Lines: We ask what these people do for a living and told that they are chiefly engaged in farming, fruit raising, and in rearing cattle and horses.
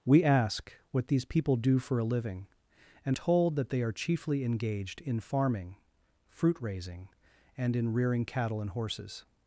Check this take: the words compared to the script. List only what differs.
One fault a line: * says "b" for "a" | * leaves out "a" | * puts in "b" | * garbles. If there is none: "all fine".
all fine